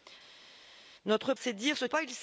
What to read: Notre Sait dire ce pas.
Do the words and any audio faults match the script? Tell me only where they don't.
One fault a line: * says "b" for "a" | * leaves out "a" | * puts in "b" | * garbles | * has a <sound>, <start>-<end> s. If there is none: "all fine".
all fine